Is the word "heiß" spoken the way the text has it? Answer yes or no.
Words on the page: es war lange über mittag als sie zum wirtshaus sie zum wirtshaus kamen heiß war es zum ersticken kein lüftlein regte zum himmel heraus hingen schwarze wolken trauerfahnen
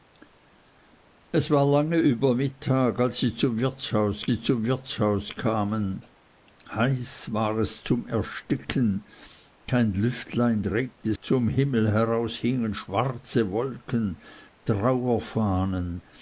yes